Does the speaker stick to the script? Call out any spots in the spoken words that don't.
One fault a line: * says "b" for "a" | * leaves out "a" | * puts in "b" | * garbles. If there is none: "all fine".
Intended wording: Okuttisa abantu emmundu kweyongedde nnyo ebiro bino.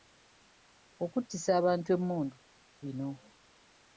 * leaves out "kweyongedde nnyo ebiro"